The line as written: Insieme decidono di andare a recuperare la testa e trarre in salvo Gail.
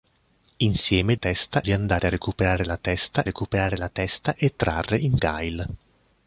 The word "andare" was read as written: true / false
true